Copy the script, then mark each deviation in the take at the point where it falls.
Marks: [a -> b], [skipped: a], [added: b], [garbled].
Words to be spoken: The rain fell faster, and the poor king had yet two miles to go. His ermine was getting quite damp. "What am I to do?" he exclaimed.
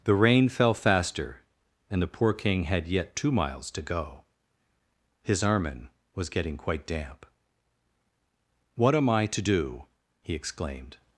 The rain fell faster, and the poor king had yet two miles to go. His ermine was getting quite damp. "What am I to do?" he exclaimed.